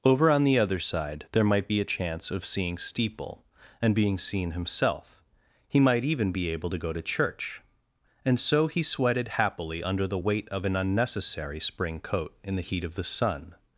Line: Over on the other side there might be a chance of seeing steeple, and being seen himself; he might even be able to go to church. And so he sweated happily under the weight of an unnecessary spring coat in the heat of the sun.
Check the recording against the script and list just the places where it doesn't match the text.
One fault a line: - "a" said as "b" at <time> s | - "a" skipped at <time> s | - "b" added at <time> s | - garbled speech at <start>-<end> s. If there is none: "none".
none